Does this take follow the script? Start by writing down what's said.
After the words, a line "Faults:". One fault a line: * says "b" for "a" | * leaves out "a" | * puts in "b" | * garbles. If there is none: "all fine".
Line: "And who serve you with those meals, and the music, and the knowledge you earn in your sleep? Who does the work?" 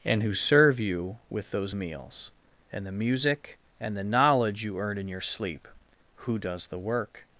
"And who serve you with those meals, and the music, and the knowledge you earn in your sleep? Who does the work?"
Faults:
all fine